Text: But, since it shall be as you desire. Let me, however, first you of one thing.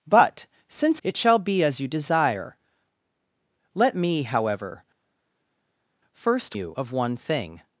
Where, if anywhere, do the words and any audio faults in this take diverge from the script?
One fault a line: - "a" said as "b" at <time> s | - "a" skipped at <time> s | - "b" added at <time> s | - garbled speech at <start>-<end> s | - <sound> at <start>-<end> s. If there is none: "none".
none